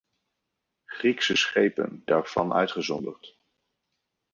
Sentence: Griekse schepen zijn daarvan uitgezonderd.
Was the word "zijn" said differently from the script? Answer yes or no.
yes